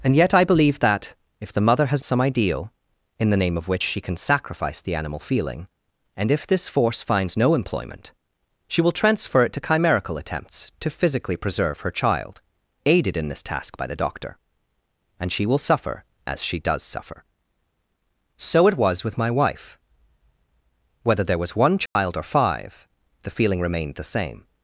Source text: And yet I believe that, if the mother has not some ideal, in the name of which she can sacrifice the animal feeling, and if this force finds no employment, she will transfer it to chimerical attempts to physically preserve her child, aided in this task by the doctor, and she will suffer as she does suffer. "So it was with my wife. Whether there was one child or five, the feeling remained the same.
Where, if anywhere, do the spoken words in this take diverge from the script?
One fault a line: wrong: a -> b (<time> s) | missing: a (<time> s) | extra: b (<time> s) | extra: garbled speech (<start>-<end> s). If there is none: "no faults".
missing: not (2.0 s)